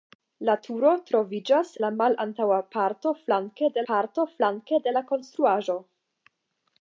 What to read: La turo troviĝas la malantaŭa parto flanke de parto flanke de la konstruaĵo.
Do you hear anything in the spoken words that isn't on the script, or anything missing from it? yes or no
no